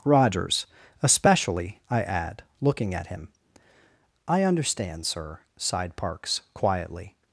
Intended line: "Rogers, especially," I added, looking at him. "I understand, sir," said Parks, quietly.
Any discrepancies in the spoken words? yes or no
yes